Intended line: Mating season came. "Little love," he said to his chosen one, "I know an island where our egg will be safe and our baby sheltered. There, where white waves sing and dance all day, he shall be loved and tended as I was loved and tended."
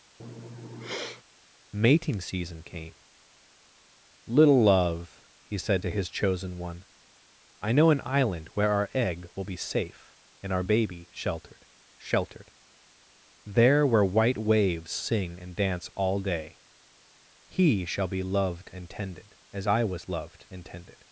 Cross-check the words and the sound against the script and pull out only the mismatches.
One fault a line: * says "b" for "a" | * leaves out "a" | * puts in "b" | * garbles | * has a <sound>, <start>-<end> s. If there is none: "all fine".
* has a sniff, 0.2-1.2 s
* puts in "sheltered"